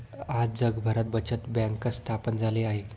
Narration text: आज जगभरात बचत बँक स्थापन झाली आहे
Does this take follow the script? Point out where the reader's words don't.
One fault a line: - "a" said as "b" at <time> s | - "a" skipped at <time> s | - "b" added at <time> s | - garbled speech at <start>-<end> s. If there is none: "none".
none